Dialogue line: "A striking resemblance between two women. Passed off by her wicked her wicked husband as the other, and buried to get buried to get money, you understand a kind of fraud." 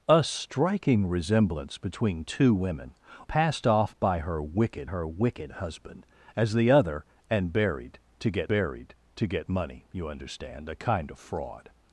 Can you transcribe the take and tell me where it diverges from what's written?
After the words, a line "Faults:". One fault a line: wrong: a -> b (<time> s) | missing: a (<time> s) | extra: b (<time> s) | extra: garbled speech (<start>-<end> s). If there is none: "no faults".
"A striking resemblance between two women. Passed off by her wicked her wicked husband as the other, and buried to get buried to get money, you understand a kind of fraud."
Faults:
no faults